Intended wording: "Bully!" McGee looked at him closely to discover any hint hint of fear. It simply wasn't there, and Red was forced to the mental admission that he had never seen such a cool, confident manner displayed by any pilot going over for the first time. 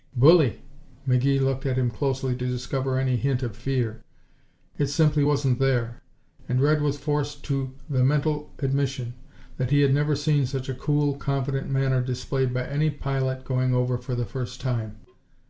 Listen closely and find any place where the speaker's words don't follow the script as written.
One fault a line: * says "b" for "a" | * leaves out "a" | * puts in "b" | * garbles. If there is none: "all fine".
* leaves out "hint"